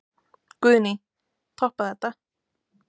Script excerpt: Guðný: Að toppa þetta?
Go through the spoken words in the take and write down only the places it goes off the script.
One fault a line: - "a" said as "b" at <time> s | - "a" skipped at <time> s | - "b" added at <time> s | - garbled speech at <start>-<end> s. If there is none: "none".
none